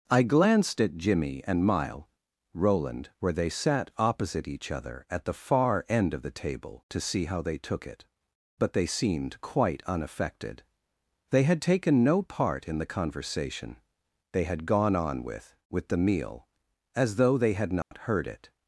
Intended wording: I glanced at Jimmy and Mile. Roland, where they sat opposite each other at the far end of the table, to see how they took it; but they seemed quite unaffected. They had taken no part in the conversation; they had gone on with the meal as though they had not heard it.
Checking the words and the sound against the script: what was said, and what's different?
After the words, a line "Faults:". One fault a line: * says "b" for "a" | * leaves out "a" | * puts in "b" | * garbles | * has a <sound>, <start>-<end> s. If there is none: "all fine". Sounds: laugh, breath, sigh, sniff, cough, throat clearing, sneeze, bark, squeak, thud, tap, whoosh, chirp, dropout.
I glanced at Jimmy and Mile. Roland, where they sat opposite each other at the far end of the table, to see how they took it; but they seemed quite unaffected. They had taken no part in the conversation; they had gone on with with the meal as though they had not heard it.
Faults:
* puts in "with"
* has a dropout, 17.8-17.9 s